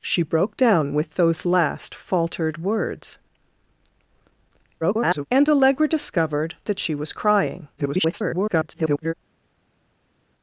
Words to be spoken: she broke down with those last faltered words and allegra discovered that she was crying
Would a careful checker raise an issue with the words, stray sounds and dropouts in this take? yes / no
yes